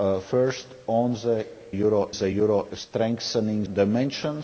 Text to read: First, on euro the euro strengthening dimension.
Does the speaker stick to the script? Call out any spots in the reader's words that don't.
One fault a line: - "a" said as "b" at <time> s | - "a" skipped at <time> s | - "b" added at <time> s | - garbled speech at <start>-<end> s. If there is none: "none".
none